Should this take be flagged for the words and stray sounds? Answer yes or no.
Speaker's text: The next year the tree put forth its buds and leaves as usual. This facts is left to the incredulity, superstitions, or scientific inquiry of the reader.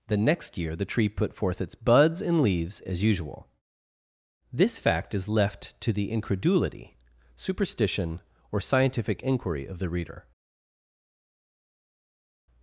yes